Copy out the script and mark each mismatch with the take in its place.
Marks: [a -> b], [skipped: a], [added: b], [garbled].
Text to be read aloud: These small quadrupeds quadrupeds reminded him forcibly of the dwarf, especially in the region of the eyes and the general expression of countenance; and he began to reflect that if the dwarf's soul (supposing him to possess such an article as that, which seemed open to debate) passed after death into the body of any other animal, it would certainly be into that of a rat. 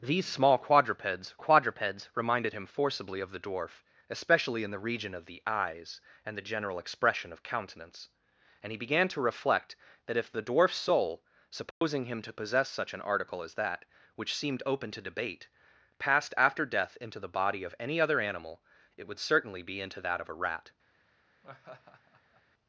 These small quadrupeds quadrupeds reminded him forcibly of the dwarf, especially in the region of the eyes and the general expression of countenance; and he began to reflect that if the dwarf's soul (supposing him to possess such an article as that, which seemed open to debate) passed after death into the body of any other animal, it would certainly be into that of a rat.